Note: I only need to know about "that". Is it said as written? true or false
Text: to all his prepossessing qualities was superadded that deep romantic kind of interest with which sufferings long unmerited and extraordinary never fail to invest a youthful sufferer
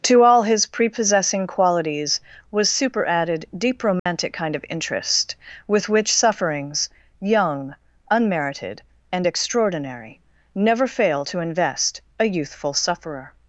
false